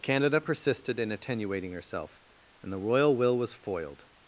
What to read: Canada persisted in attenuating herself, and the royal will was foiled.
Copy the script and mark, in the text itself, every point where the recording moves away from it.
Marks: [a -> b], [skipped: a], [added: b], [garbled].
Canada persisted in attenuating herself, and the royal will was foiled.